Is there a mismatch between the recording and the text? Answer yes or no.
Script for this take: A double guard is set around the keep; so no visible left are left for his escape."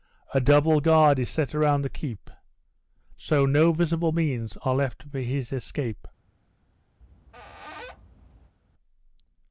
yes